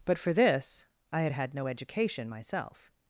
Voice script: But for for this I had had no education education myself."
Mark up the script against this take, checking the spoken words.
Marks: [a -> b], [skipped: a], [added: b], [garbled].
But for [skipped: for] this I had had no education [skipped: education] myself."